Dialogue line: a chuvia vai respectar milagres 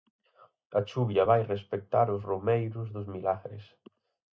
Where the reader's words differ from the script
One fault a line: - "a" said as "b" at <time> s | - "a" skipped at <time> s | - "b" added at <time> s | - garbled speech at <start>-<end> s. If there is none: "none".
- "os romeiros dos" added at 2.1 s